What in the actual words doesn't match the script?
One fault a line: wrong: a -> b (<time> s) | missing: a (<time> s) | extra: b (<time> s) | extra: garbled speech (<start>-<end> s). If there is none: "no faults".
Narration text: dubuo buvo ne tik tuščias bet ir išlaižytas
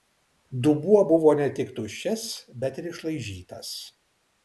no faults